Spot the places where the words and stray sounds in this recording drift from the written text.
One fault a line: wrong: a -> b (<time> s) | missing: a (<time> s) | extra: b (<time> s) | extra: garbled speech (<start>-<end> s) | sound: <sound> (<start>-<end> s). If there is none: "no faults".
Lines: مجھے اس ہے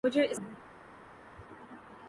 no faults